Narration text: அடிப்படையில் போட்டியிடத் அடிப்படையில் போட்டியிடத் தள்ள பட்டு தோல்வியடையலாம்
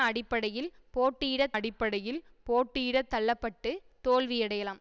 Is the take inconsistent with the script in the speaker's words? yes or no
no